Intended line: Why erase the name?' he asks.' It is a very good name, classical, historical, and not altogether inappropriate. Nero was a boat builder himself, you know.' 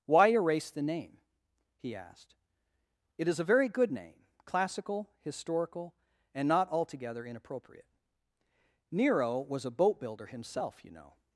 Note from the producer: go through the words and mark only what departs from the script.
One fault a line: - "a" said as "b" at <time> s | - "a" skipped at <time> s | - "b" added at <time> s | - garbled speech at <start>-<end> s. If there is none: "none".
- "asks" said as "asked" at 1.9 s